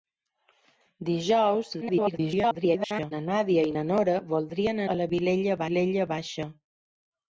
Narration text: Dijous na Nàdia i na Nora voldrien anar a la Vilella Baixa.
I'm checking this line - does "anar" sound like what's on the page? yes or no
no